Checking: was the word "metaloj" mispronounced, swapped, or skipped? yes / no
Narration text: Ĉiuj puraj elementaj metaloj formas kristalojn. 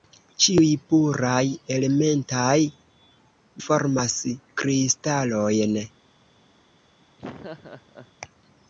yes